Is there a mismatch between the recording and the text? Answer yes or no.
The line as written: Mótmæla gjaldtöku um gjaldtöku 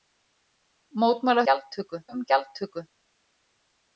no